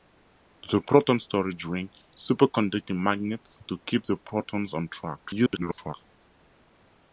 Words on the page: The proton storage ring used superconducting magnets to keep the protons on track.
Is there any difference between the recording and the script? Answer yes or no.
yes